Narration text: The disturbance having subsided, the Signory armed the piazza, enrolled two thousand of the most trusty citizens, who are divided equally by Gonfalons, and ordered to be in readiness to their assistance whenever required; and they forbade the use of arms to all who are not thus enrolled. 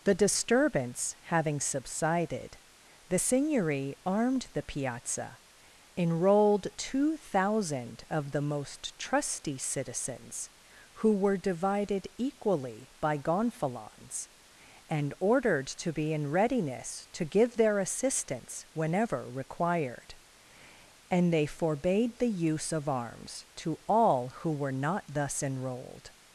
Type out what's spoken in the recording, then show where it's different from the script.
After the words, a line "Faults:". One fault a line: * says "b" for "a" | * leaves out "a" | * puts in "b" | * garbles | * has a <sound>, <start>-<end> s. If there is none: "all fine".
The disturbance having subsided, the Signory armed the piazza, enrolled two thousand of the most trusty citizens, who were divided equally by Gonfalons, and ordered to be in readiness to give their assistance whenever required; and they forbade the use of arms to all who were not thus enrolled.
Faults:
* says "were" for "are"
* puts in "give"
* says "were" for "are"